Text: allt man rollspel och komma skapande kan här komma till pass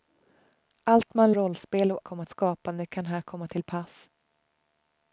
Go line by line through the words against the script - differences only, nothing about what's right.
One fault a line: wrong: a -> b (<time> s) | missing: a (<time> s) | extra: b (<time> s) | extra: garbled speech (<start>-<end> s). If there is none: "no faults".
no faults